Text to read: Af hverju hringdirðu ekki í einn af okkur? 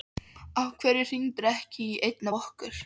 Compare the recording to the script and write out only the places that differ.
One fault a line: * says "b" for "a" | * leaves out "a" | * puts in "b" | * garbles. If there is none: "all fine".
all fine